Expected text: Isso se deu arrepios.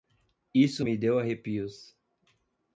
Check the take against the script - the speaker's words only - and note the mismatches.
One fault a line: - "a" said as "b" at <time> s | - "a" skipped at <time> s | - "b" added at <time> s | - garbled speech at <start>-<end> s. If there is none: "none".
- "se" said as "me" at 0.8 s